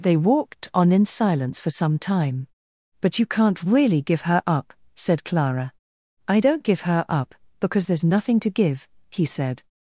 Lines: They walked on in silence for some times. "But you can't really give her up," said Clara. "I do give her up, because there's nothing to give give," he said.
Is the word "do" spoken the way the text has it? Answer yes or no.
no